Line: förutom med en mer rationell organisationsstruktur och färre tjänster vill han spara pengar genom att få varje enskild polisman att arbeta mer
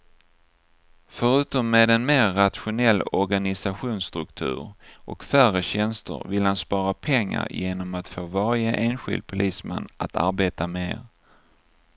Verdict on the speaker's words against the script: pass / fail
pass